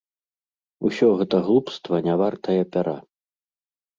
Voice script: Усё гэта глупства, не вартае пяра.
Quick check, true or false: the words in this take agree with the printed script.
true